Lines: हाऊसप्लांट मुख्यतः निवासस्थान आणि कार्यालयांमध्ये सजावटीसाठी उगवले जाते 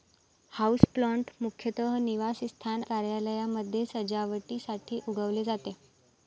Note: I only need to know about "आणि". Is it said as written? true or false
false